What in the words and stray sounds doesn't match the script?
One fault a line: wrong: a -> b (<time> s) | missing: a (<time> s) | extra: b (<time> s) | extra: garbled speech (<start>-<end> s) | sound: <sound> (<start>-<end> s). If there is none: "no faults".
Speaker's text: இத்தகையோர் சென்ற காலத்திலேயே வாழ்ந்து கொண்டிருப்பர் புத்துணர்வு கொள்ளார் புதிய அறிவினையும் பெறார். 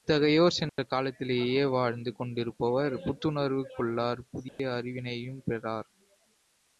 sound: dropout (0.7-0.8 s)
sound: dropout (4.5-4.6 s)